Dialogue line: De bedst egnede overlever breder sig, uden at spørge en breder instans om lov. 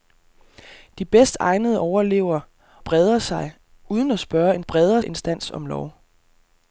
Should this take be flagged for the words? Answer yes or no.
no